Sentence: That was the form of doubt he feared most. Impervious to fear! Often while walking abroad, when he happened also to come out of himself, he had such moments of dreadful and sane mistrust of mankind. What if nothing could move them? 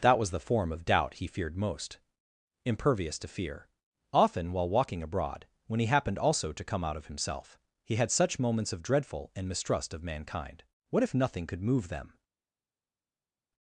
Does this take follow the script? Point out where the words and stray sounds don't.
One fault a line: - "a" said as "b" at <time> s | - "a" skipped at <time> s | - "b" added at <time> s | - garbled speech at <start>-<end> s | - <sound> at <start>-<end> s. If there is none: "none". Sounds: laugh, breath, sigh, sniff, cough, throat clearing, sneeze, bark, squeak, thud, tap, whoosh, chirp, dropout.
- "sane" skipped at 9.5 s